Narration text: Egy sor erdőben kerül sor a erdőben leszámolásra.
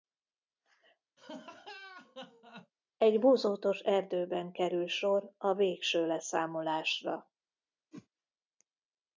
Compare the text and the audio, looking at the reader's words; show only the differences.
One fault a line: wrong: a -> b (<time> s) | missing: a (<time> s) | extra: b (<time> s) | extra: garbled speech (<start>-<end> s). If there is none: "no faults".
wrong: sor -> bozótos (3.2 s)
wrong: erdőben -> végső (5.5 s)